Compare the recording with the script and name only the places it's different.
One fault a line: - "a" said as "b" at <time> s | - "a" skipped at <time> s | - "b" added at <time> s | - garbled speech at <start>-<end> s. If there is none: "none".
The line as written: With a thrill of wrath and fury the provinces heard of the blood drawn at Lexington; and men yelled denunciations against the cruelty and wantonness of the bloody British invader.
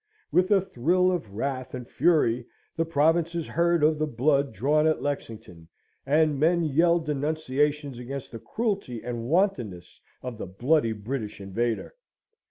none